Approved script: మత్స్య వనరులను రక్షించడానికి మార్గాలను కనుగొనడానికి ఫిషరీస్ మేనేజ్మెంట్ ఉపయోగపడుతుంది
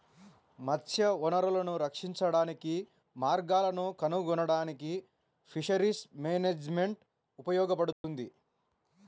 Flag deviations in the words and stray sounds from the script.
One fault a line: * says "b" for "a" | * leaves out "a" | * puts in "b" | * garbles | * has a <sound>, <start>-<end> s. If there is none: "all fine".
* has a dropout, 7.9-8.0 s